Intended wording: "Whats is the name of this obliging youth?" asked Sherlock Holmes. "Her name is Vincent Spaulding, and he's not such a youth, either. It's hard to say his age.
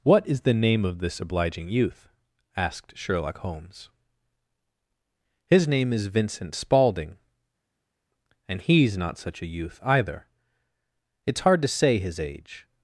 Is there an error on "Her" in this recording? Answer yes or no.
yes